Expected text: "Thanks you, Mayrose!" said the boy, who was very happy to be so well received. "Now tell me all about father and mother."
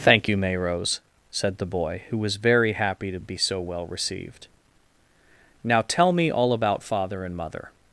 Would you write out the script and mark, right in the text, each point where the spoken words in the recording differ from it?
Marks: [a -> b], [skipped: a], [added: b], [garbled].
["Thanks -> Thank] you, Mayrose!" said the boy, who was very happy to be so well received. "Now tell me all about father and mother."